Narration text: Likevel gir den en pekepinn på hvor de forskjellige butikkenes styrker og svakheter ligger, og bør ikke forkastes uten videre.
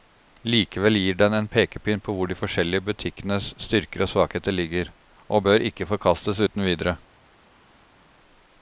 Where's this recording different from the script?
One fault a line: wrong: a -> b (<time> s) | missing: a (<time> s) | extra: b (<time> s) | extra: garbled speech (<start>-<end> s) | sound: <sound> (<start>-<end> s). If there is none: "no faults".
no faults